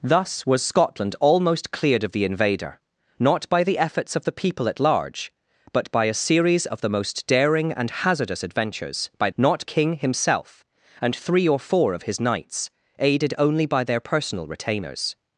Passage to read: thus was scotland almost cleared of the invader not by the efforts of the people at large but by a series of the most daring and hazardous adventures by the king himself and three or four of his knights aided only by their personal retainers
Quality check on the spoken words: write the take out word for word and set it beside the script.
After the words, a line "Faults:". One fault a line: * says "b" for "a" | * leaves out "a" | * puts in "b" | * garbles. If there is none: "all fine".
thus was scotland almost cleared of the invader not by the efforts of the people at large but by a series of the most daring and hazardous adventures by not king himself and three or four of his knights aided only by their personal retainers
Faults:
* says "not" for "the"